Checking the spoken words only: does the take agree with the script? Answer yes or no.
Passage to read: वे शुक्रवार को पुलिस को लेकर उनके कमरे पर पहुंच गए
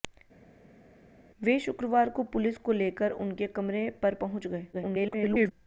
no